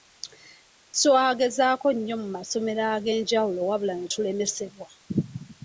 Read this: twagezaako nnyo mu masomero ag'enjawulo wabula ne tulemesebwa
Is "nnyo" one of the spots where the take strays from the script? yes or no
no